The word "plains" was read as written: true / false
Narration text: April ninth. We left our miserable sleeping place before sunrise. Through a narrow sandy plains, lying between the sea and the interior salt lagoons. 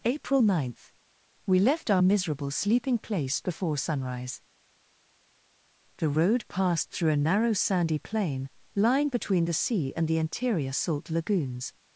false